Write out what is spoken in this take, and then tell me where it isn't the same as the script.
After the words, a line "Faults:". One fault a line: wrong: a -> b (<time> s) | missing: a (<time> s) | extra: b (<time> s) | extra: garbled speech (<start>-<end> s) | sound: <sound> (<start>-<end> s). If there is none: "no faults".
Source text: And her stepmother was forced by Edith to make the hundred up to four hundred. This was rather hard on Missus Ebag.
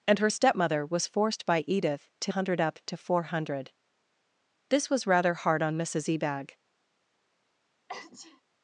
And her stepmother was forced by Edith to hundred up to four hundred. This was rather hard on Missus Ebag.
Faults:
missing: make the (2.3 s)
sound: sneeze (7.9-8.4 s)